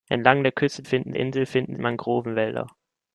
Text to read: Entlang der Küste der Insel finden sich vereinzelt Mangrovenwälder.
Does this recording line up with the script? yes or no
no